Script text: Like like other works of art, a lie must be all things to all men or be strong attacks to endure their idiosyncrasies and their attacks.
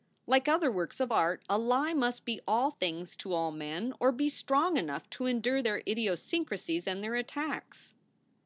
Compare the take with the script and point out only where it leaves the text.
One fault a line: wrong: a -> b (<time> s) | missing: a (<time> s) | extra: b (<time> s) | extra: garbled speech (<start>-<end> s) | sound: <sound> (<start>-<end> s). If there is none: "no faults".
missing: like (0.5 s)
wrong: attacks -> enough (4.8 s)